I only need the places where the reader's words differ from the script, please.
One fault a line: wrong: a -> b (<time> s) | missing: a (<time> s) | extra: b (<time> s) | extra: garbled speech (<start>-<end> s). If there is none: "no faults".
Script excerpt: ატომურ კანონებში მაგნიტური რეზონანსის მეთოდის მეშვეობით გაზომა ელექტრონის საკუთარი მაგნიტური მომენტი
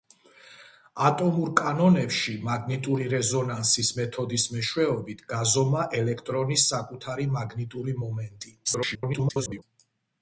extra: garbled speech (8.6-9.6 s)